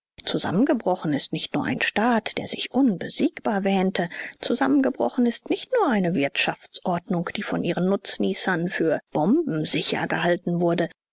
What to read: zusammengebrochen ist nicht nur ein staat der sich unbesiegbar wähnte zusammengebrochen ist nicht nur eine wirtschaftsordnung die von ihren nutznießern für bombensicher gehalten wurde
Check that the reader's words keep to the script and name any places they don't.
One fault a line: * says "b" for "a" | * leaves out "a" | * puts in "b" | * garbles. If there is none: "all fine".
all fine